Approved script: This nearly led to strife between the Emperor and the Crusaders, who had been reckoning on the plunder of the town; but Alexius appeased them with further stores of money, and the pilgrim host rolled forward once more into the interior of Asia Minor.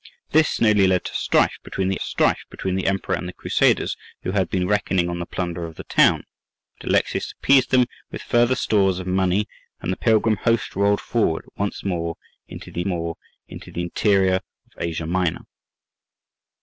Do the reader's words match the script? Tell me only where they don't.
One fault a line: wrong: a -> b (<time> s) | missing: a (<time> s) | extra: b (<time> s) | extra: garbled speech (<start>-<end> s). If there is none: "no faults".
extra: strife between the (2.0 s)
extra: more into the (12.8 s)